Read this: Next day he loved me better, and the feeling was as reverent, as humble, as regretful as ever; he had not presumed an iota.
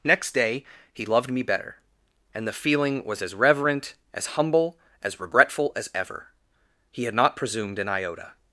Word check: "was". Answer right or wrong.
right